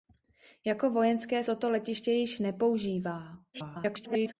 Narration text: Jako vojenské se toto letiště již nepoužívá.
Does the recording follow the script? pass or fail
fail